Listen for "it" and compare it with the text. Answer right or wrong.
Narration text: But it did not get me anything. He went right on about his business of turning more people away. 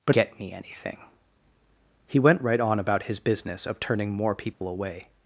wrong